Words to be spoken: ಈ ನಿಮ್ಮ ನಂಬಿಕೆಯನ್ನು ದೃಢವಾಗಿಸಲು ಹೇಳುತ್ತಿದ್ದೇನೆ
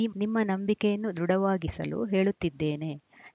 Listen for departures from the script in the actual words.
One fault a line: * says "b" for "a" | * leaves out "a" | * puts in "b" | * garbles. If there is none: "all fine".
all fine